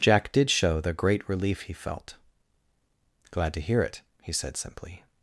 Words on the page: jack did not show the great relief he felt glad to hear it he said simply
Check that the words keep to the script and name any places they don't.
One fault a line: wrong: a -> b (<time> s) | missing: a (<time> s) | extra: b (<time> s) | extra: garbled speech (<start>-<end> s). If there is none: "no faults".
missing: not (0.5 s)